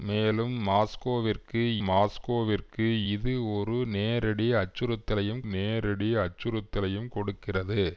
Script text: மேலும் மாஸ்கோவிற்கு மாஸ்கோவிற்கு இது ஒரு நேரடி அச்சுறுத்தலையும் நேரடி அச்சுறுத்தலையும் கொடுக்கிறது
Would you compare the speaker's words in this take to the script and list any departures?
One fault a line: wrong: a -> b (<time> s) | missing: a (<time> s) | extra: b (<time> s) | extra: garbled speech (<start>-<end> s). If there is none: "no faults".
no faults